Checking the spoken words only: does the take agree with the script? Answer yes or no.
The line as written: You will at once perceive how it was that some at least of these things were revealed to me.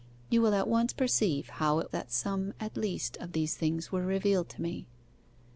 no